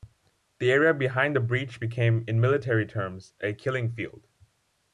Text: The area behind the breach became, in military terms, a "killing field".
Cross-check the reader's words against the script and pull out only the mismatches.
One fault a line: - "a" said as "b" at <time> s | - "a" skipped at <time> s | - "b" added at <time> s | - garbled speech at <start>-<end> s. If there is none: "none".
none